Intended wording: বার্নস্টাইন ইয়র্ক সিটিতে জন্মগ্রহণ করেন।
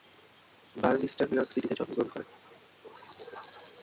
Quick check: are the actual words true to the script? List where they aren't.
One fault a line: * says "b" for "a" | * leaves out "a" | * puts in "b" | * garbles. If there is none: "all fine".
all fine